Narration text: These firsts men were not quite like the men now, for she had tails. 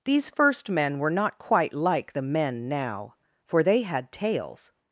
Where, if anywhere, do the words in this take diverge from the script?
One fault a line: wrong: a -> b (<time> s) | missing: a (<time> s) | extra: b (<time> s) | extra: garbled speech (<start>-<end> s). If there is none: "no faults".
wrong: firsts -> first (0.3 s)
wrong: she -> they (3.6 s)